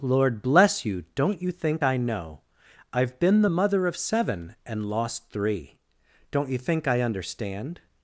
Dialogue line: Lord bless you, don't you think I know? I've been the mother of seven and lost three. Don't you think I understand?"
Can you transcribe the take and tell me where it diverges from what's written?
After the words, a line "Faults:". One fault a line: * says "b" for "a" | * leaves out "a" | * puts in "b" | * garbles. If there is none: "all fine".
Lord bless you, don't you think I know? I've been the mother of seven and lost three. Don't you think I understand?"
Faults:
all fine